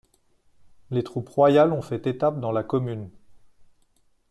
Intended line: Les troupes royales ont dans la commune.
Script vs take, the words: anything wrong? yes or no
yes